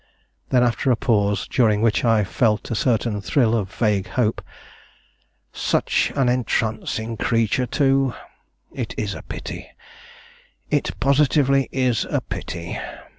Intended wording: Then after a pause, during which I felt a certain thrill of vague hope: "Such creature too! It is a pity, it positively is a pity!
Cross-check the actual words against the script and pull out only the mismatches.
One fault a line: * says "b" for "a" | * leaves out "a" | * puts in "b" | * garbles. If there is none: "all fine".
* puts in "an entrancing"